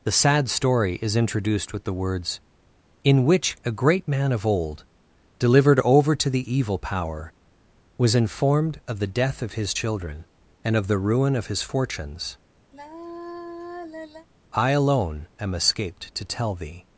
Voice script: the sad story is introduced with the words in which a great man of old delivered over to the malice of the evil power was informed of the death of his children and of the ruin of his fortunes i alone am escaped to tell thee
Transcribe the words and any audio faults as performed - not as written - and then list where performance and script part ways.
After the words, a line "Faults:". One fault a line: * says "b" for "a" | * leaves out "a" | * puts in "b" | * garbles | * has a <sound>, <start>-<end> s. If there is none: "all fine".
the sad story is introduced with the words in which a great man of old delivered over to the evil power was informed of the death of his children and of the ruin of his fortunes i alone am escaped to tell thee
Faults:
* leaves out "malice of the"
* has a sigh, 12.7-14.3 s